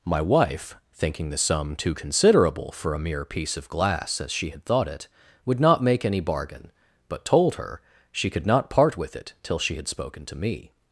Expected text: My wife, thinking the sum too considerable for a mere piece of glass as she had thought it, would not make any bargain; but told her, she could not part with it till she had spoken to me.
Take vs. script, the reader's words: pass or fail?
pass